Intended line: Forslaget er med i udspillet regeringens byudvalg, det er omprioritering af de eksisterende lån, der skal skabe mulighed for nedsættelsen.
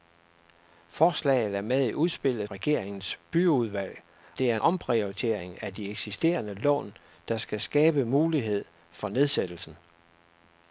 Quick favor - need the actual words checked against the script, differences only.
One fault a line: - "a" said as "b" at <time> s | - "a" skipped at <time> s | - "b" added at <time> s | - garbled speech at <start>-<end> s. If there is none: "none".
none